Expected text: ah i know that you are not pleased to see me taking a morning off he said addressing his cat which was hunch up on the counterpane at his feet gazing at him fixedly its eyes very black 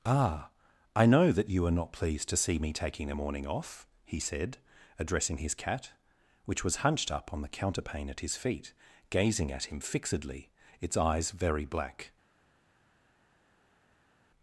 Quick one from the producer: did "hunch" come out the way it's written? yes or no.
no